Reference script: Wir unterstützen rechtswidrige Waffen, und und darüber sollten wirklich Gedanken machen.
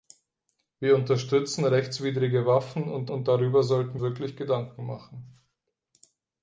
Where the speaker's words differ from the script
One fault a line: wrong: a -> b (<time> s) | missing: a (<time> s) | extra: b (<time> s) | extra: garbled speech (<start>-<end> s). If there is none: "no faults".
no faults